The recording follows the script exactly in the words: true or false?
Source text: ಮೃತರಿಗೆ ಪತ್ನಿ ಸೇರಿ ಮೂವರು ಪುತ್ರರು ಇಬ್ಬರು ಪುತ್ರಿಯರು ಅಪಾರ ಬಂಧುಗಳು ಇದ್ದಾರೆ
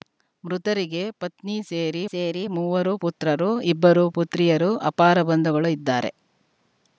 false